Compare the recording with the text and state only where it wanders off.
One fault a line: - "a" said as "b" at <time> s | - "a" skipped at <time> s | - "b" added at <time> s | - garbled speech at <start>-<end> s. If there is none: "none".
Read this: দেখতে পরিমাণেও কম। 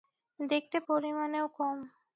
none